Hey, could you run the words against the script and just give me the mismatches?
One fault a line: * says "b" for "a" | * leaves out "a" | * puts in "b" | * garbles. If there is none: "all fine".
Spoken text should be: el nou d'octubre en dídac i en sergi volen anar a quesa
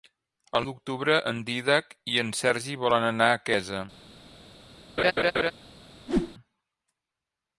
* leaves out "nou"